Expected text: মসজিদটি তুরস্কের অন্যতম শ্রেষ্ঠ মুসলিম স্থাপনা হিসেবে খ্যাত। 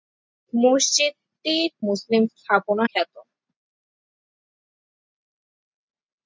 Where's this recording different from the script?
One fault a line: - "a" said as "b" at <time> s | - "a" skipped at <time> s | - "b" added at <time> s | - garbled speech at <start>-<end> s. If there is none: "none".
- "তুরস্কের অন্যতম শ্রেষ্ঠ" skipped at 1.6 s
- "হিসেবে" skipped at 2.8 s